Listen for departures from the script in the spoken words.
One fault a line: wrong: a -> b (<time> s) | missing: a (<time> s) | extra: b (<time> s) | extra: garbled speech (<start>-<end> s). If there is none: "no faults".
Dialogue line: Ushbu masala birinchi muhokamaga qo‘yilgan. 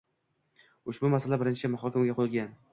no faults